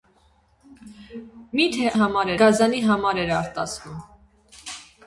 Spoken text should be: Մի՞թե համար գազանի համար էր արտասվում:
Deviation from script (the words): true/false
false